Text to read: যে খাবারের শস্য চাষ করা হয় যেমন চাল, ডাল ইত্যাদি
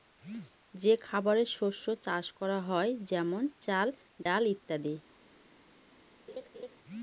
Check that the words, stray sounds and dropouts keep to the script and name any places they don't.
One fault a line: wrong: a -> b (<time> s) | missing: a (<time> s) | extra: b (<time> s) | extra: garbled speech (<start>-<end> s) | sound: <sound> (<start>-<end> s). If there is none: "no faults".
sound: dropout (4.2-4.3 s)
sound: laugh (6.3-6.8 s)